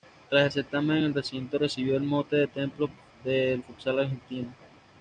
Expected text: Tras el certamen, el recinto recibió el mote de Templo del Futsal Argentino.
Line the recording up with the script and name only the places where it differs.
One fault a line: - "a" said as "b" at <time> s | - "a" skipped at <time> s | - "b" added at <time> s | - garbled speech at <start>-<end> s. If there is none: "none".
none